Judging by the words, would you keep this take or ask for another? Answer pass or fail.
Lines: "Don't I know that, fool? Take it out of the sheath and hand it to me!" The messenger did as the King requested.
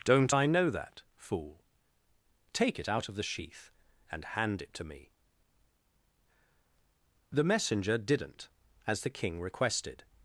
fail